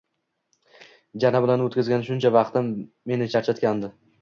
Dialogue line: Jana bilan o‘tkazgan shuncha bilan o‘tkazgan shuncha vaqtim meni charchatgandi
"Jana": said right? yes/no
yes